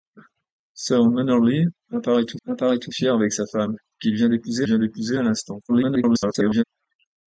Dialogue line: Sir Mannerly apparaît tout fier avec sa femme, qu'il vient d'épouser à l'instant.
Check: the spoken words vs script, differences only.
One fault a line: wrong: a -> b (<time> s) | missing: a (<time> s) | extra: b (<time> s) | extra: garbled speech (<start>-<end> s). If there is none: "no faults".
extra: apparaît tout (2.5 s)
extra: vient d'épouser (4.6 s)
extra: garbled speech (5.7-6.6 s)